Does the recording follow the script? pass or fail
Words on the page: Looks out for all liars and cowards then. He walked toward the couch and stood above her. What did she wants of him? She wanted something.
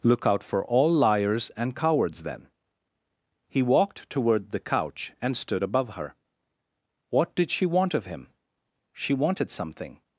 fail